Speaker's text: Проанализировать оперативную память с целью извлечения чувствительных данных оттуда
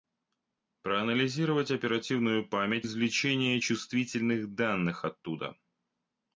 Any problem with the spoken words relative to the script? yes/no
yes